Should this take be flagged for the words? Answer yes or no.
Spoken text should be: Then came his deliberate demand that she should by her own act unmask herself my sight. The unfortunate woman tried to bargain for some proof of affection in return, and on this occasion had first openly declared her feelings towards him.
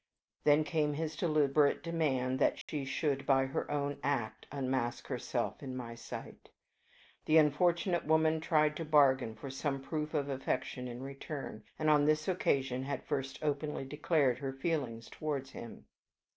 yes